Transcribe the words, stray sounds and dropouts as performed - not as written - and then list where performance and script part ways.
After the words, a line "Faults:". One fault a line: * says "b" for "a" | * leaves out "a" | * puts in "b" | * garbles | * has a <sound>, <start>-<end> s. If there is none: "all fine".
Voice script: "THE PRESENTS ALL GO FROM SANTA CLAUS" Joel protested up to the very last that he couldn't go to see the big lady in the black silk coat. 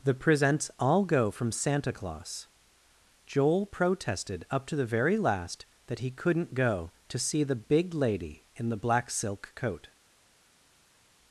"THE PRESENTS ALL GO FROM SANTA CLAUS" Joel protested up to the very last that he couldn't go to see the big lady in the black silk coat.
Faults:
all fine